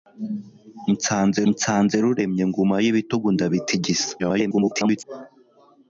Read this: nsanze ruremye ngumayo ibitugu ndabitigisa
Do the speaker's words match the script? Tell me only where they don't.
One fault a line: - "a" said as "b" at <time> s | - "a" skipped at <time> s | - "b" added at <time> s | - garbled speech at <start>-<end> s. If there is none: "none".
- "nsanze" added at 1.5 s
- garbled speech at 4.2-5.0 s